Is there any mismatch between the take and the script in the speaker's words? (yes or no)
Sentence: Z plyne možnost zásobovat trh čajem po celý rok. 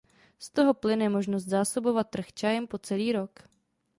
yes